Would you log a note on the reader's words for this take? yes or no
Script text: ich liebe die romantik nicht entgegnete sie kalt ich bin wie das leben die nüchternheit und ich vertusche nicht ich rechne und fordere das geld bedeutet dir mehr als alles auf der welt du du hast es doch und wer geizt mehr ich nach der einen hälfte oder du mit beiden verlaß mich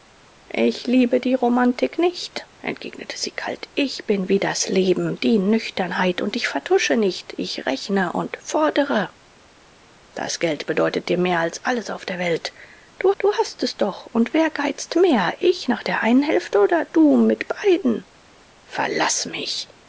no